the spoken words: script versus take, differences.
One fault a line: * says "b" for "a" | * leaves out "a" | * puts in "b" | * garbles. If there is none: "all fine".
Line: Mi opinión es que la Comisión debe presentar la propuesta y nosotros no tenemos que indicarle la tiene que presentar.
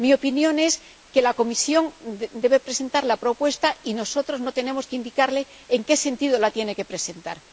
* puts in "en qué sentido"